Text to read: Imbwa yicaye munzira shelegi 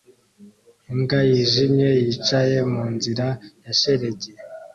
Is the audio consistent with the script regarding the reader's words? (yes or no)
no